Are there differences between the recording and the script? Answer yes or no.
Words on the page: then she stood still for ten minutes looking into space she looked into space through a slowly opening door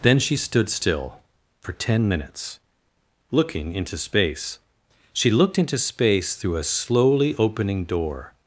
no